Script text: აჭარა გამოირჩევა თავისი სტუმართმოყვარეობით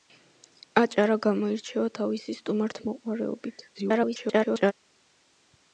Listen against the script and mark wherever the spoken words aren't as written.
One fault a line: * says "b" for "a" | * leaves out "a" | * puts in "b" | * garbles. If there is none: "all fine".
* garbles